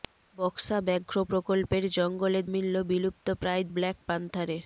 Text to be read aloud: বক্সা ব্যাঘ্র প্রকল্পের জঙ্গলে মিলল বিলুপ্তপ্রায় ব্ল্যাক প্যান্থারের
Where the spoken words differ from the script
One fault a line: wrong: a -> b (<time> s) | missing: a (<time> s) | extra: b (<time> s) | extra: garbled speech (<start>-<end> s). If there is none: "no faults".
no faults